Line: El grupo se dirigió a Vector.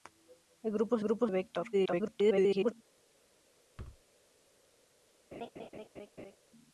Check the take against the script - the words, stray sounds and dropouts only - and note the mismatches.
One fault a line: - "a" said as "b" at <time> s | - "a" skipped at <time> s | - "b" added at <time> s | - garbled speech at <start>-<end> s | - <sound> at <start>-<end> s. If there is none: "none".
- "dirigió" said as "grupo" at 1.0 s
- garbled speech at 1.7-2.7 s
- thud at 3.8-4.0 s
- laugh at 5.3-6.4 s